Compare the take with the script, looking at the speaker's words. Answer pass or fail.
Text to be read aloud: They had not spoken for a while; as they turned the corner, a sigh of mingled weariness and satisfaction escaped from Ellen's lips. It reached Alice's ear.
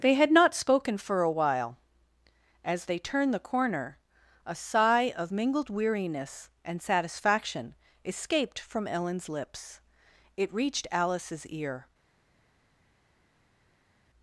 pass